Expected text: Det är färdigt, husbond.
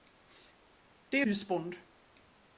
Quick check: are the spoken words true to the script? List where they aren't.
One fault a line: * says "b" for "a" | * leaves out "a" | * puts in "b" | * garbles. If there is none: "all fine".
* leaves out "färdigt"